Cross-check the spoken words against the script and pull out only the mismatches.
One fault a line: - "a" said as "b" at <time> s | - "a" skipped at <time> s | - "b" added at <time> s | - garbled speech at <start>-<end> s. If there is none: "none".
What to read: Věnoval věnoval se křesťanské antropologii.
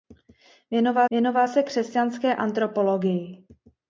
none